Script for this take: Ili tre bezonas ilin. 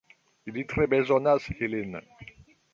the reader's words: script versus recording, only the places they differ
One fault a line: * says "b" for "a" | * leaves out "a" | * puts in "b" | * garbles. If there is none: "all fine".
all fine